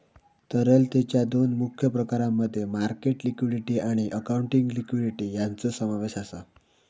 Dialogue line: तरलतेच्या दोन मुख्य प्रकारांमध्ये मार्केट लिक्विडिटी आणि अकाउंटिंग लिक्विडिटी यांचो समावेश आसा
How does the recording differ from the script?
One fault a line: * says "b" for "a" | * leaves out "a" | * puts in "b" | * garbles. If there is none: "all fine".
all fine